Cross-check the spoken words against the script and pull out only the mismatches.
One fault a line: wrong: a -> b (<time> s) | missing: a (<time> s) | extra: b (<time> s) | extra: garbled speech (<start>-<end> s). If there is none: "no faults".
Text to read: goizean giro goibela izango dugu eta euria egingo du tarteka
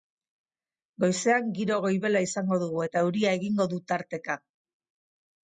no faults